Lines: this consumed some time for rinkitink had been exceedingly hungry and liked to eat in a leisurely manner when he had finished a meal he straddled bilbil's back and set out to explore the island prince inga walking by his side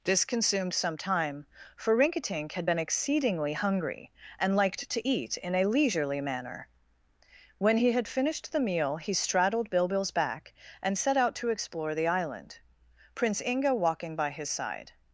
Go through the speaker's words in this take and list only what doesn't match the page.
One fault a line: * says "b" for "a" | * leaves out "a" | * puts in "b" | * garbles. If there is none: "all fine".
* says "the" for "a"